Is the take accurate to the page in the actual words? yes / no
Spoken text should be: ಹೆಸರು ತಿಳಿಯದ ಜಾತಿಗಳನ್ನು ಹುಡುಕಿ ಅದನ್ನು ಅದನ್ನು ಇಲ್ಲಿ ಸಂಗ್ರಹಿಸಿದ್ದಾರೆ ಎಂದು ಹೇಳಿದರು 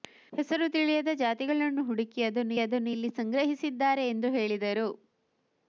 yes